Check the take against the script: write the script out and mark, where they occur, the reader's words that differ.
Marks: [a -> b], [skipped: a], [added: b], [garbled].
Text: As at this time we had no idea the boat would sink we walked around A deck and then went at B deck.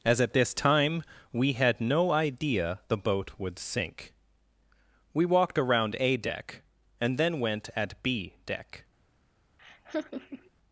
As at this time we had no idea the boat would sink we walked around A deck and then went at B deck.